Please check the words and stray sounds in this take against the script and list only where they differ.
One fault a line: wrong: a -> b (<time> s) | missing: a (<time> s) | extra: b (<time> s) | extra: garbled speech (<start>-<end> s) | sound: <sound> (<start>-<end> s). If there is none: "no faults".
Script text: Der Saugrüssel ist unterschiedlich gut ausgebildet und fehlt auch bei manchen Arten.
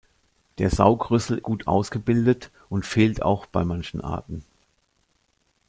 missing: ist unterschiedlich (1.4 s)